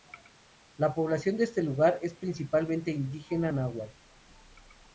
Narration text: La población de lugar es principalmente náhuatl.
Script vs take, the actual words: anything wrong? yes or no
yes